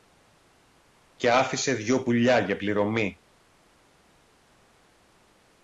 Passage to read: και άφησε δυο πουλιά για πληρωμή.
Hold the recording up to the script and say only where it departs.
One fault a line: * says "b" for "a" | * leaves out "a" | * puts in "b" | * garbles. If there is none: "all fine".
all fine